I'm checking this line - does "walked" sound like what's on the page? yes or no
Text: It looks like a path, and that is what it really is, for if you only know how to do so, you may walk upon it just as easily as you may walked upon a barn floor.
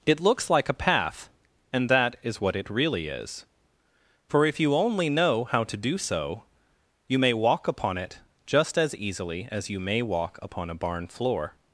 no